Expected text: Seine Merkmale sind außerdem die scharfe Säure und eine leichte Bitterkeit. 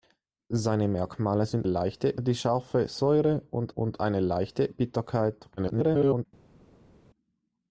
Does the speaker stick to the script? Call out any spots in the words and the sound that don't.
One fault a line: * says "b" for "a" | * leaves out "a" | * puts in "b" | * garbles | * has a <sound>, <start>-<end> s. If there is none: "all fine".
* says "leichte" for "außerdem"
* puts in "und"
* garbles